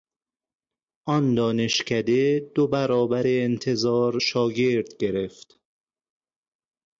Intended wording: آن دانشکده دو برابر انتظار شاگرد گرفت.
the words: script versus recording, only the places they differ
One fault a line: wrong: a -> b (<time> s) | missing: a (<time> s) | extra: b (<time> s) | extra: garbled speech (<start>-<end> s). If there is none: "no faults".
no faults